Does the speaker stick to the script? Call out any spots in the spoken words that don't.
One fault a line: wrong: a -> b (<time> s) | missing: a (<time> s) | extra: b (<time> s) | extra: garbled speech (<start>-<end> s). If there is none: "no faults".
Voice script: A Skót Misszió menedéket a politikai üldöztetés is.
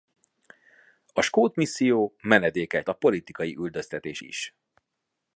no faults